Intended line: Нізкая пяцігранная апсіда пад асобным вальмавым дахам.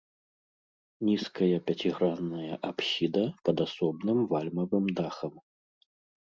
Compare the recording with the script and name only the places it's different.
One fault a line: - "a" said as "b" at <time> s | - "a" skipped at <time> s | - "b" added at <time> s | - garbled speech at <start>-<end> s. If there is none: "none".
none